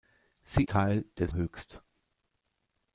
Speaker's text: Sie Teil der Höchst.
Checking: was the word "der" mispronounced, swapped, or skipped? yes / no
no